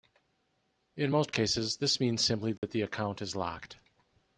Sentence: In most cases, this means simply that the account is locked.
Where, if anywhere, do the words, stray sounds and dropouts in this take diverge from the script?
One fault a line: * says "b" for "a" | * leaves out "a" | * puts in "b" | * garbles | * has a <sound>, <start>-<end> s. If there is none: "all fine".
* has a dropout, 2.6-2.6 s